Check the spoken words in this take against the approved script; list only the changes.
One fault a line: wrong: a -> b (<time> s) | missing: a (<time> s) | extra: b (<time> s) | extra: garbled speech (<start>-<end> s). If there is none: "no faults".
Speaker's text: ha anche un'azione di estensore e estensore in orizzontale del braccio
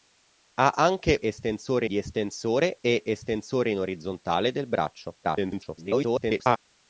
wrong: un'azione -> estensore (1.2 s)
extra: garbled speech (5.2-6.6 s)